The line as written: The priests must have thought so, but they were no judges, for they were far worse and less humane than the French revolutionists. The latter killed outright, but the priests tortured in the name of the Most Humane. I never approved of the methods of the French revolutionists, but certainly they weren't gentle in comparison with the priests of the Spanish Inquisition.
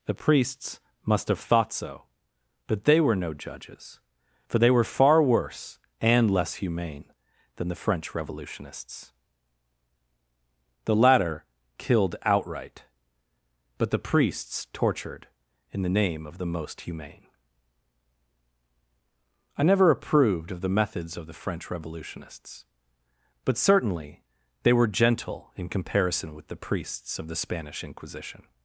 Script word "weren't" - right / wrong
wrong